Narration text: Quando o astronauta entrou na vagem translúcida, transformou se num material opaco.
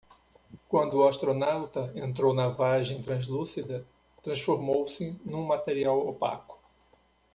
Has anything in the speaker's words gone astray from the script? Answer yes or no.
no